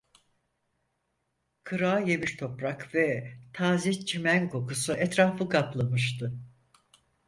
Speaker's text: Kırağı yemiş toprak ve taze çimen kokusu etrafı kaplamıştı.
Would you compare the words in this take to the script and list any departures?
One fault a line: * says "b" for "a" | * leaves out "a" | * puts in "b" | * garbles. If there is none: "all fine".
all fine